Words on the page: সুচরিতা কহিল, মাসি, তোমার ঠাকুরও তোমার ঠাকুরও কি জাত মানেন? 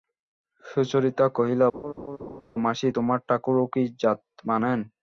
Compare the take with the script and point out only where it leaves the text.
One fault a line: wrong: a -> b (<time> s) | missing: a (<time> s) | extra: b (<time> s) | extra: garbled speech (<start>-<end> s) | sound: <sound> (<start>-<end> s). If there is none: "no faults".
sound: laugh (1.7-2.4 s)
missing: তোমার ঠাকুরও (3.6 s)